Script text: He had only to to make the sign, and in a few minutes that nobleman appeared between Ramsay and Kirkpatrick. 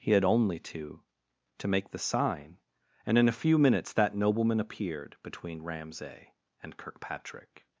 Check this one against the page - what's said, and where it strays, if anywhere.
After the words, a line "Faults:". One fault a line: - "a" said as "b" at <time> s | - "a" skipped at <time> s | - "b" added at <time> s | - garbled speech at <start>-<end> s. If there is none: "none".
He had only to to make the sign, and in a few minutes that nobleman appeared between Ramsay and Kirkpatrick.
Faults:
none